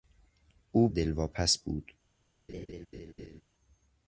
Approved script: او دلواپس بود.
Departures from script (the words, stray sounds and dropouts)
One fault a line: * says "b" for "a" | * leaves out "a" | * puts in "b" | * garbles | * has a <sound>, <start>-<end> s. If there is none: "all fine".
* has a laugh, 2.5-3.4 s